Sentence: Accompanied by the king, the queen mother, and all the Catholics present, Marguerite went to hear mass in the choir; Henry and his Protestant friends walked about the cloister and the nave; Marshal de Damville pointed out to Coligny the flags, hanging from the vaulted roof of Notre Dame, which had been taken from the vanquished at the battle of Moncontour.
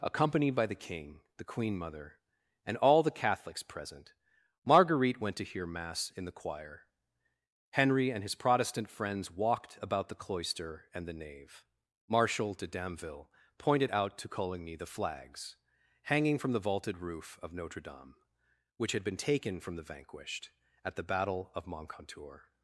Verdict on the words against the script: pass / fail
pass